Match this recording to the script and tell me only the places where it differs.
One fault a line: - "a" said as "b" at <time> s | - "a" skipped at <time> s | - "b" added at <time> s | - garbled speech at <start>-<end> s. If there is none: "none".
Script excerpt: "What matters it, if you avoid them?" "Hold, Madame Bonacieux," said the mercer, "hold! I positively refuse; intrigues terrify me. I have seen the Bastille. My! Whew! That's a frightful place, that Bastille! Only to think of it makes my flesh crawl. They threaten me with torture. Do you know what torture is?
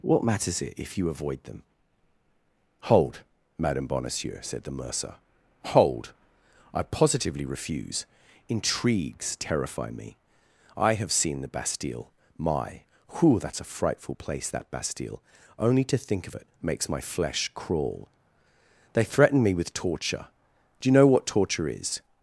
none